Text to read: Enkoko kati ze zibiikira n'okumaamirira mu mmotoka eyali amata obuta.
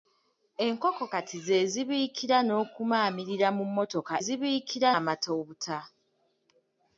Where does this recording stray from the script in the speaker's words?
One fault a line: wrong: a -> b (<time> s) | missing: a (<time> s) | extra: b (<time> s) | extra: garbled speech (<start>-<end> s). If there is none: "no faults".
wrong: eyali -> zibiikira (4.2 s)